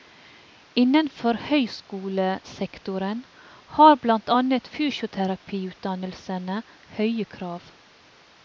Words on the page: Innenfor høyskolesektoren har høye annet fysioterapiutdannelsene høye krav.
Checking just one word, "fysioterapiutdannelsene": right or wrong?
right